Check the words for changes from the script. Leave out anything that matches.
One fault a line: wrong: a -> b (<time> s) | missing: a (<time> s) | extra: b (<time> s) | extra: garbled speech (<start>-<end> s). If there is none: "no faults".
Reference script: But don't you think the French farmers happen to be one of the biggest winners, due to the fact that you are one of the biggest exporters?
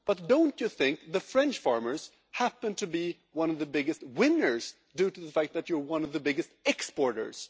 no faults